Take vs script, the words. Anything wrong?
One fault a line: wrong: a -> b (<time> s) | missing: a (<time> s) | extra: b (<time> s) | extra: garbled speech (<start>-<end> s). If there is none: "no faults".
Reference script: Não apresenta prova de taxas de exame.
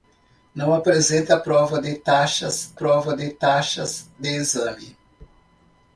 extra: prova de taxas (2.7 s)